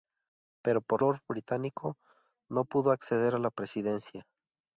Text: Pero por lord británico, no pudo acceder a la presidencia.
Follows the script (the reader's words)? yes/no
yes